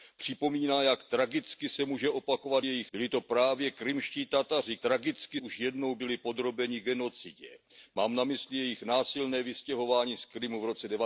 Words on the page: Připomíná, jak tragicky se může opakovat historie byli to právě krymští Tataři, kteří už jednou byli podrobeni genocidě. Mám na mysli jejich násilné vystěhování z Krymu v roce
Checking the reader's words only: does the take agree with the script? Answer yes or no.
no